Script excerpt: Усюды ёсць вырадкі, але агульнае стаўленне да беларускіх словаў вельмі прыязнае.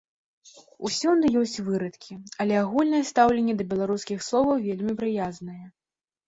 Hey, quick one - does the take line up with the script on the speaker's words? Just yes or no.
yes